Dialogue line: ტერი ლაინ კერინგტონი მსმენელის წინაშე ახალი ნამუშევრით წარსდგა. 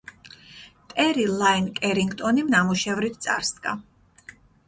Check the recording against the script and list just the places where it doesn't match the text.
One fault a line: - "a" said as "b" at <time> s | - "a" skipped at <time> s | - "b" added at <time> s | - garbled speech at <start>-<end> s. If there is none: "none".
- "მსმენელის წინაშე ახალი" skipped at 2.5 s